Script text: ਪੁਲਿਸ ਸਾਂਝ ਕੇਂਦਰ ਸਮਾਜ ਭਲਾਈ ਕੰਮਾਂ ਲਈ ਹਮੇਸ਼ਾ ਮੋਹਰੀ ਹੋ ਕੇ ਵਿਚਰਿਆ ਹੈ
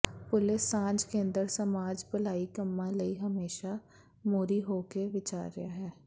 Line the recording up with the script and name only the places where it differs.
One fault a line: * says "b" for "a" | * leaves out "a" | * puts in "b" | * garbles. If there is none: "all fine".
all fine